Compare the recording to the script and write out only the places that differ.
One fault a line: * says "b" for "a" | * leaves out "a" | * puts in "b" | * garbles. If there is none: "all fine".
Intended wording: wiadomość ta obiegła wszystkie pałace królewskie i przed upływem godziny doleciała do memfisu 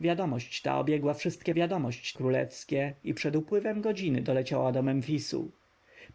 * says "wiadomość" for "pałace"